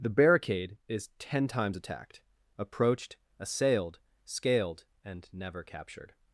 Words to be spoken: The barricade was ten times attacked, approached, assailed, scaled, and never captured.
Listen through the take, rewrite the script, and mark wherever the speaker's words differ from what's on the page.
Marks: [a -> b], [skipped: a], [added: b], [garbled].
The barricade [was -> is] ten times attacked, approached, assailed, scaled, and never captured.